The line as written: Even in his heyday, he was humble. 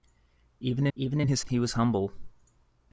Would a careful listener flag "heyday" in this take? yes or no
yes